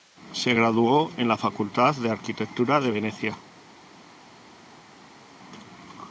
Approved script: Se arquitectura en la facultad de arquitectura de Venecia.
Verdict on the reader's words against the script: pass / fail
fail